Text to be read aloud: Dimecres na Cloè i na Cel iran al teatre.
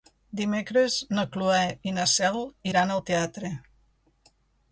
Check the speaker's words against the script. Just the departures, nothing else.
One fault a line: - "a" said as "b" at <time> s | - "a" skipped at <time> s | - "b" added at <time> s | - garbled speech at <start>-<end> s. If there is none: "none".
none